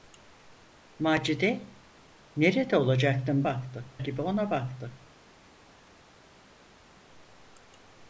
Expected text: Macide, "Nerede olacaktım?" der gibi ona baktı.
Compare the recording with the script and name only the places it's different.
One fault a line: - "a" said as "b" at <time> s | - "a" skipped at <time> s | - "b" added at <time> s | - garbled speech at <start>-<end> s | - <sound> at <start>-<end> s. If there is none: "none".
- "der" said as "baktı" at 3.4 s